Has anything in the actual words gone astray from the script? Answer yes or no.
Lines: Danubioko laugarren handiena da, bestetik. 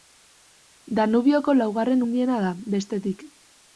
no